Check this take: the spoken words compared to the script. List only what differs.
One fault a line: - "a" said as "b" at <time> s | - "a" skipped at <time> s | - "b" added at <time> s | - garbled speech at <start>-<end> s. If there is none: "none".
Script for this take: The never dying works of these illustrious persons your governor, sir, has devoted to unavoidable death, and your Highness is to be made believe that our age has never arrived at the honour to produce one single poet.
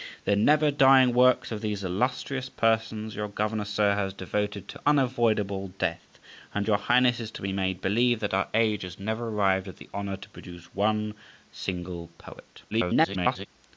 - garbled speech at 12.7-13.5 s